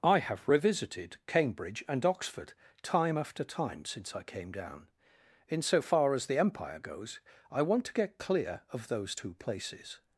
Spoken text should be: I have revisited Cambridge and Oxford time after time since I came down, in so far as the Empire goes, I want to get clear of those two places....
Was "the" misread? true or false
false